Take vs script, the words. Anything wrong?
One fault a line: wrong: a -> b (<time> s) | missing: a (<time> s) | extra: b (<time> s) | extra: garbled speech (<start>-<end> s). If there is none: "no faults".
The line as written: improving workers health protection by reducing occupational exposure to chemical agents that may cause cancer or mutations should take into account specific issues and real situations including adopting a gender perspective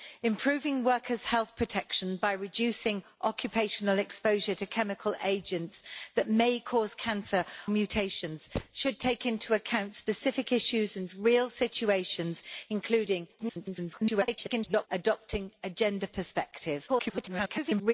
missing: or (7.5 s)
extra: garbled speech (13.4-14.9 s)
extra: garbled speech (16.9-17.9 s)